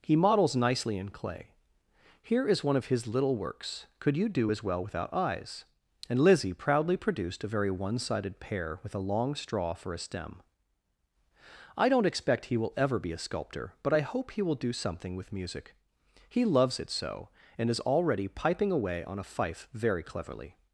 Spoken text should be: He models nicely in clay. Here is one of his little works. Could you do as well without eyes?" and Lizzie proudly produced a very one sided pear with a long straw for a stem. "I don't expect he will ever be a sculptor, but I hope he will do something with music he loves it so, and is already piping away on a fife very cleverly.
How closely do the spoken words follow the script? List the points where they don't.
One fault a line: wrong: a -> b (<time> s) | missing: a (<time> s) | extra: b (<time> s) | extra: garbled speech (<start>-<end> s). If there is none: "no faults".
no faults